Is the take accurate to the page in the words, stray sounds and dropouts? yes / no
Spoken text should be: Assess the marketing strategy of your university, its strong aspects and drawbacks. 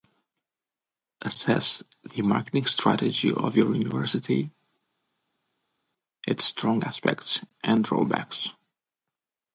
yes